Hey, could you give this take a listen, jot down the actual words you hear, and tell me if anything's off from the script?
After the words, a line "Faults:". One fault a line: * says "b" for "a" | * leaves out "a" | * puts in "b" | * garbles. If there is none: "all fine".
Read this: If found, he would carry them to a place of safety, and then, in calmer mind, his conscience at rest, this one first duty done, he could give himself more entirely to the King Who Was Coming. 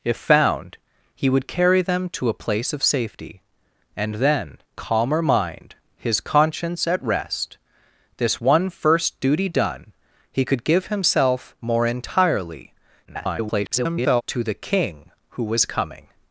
If found, he would carry them to a place of safety, and then, calmer mind, his conscience at rest, this one first duty done, he could give himself more entirely [garbled] to the King Who Was Coming.
Faults:
* leaves out "in"
* garbles